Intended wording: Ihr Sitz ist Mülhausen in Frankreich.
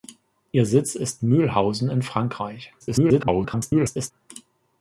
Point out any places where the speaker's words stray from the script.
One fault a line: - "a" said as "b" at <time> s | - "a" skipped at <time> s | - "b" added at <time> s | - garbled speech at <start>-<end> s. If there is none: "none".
- garbled speech at 2.8-4.1 s